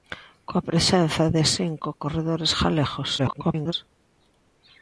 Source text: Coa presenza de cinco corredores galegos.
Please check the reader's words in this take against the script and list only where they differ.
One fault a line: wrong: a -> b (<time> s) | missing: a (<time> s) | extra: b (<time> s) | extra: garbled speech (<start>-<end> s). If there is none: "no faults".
extra: garbled speech (3.2-3.7 s)